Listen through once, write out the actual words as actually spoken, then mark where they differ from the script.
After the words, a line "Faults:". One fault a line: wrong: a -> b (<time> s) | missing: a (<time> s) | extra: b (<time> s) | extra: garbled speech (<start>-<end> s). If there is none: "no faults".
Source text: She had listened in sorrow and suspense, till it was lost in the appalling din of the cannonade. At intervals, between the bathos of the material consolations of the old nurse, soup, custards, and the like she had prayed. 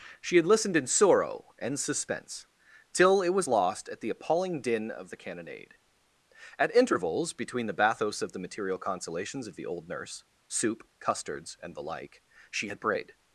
She had listened in sorrow and suspense, till it was lost at the appalling din of the cannonade. At intervals, between the bathos of the material consolations of the old nurse, soup, custards, and the like she had prayed.
Faults:
wrong: in -> at (3.9 s)